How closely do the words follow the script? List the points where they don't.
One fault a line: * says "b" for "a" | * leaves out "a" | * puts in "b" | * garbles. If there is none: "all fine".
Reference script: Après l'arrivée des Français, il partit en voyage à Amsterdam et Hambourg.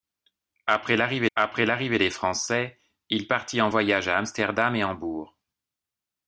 * puts in "après l'arrivée"